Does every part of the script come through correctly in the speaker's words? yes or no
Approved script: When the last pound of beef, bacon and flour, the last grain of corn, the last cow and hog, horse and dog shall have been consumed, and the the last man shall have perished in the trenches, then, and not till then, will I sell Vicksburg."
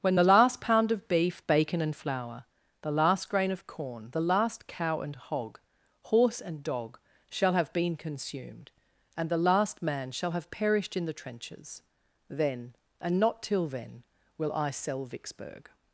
no